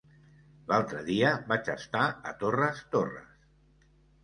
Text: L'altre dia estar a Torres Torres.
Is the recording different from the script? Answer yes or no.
yes